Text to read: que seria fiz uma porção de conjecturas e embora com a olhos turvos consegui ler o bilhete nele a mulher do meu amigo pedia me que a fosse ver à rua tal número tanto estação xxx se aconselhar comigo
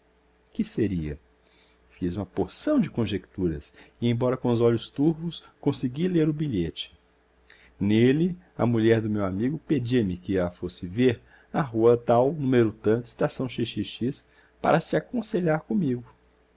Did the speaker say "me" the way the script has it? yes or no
yes